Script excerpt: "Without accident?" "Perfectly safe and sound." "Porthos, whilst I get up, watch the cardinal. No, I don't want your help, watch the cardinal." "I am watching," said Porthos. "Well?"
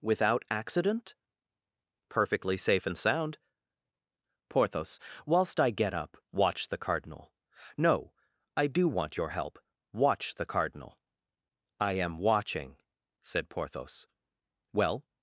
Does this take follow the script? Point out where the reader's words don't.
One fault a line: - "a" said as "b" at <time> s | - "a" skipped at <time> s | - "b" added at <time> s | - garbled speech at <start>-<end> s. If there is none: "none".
- "don't" said as "do" at 8.7 s